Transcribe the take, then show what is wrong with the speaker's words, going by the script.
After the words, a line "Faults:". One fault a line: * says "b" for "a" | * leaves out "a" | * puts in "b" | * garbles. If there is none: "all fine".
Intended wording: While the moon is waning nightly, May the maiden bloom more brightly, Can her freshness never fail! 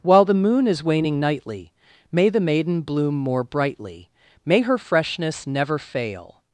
While the moon is waning nightly, May the maiden bloom more brightly, May her freshness never fail!
Faults:
* says "May" for "Can"